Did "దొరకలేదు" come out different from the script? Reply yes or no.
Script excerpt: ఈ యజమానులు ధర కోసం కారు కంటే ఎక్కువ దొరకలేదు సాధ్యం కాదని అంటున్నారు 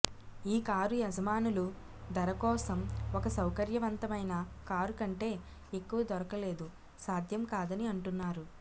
no